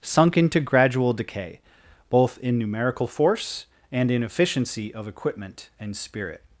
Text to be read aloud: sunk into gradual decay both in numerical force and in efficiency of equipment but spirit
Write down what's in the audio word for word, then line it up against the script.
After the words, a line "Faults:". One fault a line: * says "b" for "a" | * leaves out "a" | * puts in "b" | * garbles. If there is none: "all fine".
sunk into gradual decay both in numerical force and in efficiency of equipment and spirit
Faults:
* says "and" for "but"